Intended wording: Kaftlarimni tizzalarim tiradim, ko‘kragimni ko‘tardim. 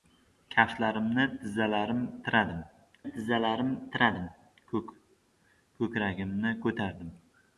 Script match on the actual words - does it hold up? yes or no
no